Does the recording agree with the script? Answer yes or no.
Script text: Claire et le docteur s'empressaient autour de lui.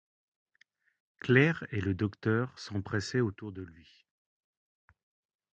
yes